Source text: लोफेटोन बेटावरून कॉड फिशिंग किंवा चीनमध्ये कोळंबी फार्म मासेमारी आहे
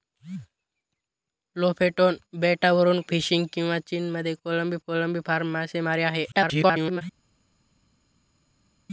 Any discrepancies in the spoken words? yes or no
yes